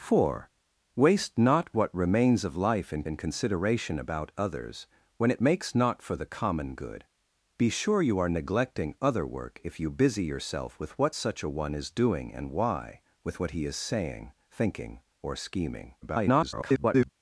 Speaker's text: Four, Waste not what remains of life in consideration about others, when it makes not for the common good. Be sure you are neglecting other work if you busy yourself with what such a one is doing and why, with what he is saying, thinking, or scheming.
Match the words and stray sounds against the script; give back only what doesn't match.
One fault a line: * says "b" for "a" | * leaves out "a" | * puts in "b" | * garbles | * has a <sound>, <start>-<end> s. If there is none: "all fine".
* puts in "in"
* garbles